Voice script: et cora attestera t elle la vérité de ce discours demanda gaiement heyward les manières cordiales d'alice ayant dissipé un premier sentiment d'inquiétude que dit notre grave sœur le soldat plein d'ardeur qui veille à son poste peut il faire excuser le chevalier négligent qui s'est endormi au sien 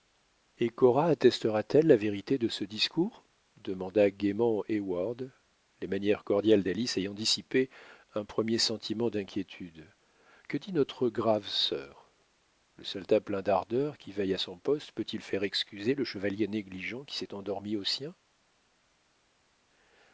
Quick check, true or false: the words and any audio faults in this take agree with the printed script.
true